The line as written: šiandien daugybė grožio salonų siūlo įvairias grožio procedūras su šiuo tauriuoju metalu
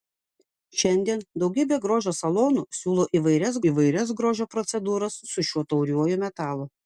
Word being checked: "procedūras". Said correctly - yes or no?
yes